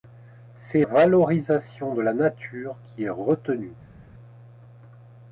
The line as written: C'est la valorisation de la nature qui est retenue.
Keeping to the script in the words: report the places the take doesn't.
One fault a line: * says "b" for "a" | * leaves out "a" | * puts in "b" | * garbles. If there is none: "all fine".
* leaves out "la"